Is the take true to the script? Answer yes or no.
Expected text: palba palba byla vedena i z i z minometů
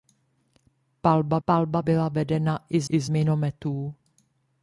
yes